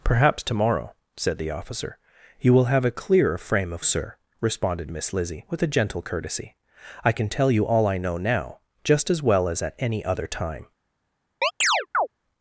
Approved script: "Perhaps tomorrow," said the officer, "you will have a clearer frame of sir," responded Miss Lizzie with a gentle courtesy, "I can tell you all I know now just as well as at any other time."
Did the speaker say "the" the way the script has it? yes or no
yes